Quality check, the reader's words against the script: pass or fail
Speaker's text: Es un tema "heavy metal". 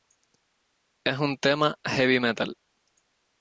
pass